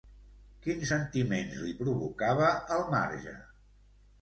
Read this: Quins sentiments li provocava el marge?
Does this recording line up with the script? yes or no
yes